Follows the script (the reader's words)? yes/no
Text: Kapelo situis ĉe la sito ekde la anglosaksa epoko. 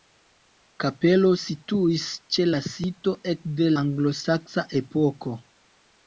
no